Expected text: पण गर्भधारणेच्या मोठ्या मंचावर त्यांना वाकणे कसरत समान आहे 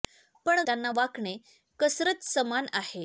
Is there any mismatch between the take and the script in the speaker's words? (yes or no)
yes